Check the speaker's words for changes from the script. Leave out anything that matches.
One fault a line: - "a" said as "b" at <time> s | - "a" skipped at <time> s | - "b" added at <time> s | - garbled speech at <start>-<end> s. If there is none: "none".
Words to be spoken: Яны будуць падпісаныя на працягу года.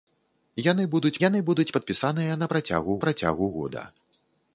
- "яны будуць" added at 1.3 s
- "працягу" added at 3.0 s